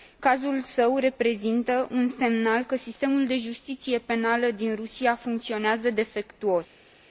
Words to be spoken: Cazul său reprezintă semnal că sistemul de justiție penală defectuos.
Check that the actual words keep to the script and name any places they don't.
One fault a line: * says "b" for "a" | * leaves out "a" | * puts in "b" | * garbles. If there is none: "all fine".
* puts in "un"
* puts in "din Rusia funcționează"